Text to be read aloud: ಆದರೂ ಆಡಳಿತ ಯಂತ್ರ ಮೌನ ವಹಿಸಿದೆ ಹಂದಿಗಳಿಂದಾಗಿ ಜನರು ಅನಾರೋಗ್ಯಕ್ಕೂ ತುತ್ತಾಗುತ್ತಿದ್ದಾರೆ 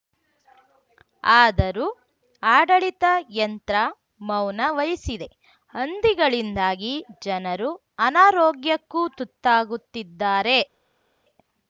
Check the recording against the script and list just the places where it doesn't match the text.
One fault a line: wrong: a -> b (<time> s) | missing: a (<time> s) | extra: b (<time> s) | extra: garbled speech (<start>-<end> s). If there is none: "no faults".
no faults